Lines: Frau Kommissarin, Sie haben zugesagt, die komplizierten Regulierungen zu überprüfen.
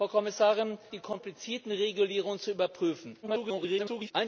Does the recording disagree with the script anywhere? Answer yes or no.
yes